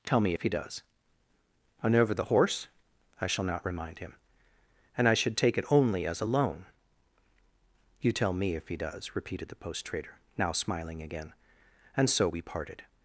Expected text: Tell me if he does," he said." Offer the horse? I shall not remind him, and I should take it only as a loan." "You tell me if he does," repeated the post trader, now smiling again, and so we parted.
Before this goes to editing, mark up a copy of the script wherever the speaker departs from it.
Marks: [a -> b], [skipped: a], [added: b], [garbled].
Tell me if he does," [he said." Offer -> and over] the horse? I shall not remind him, and I should take it only as a loan." "You tell me if he does," repeated the post trader, now smiling again, and so we parted.